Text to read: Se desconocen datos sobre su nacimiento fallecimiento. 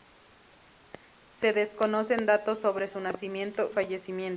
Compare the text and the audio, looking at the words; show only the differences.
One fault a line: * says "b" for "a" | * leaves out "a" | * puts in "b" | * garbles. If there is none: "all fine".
all fine